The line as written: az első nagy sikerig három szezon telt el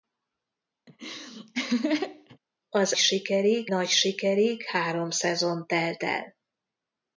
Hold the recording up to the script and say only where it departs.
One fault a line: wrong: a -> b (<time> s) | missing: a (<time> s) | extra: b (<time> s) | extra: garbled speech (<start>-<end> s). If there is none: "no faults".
wrong: első -> sikerig (3.0 s)